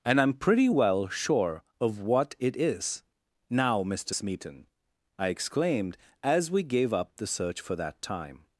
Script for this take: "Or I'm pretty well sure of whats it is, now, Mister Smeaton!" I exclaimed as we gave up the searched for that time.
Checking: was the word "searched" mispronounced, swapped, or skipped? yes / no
yes